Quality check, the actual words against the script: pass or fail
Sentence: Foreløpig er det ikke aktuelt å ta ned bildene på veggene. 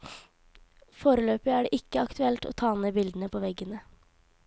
pass